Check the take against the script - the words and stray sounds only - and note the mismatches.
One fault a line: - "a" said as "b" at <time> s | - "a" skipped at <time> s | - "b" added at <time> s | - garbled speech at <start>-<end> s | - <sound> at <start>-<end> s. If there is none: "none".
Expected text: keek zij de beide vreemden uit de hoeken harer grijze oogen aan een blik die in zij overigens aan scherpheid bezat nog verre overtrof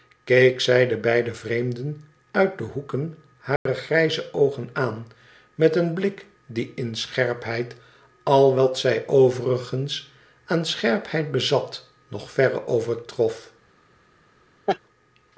- dropout at 3.6-3.7 s
- "met" added at 5.5 s
- "scherpheid al wat" added at 7.0 s
- laugh at 14.7-14.8 s